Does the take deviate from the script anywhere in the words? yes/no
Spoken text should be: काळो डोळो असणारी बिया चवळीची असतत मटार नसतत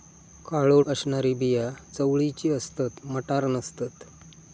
yes